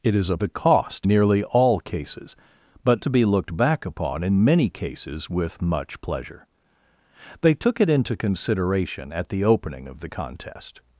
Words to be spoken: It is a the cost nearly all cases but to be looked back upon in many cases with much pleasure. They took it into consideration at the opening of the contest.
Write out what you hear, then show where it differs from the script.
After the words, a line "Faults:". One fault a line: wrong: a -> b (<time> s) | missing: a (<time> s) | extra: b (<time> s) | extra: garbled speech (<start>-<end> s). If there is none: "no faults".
It is a the cost nearly all cases but to be looked back upon in many cases with much pleasure. They took it into consideration at the opening of the contest.
Faults:
no faults